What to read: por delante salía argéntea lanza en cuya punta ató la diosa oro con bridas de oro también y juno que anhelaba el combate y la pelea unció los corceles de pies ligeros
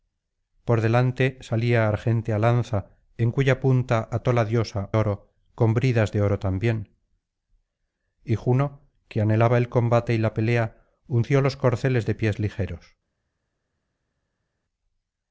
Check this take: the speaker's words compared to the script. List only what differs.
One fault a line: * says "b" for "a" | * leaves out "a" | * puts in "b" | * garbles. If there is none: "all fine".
all fine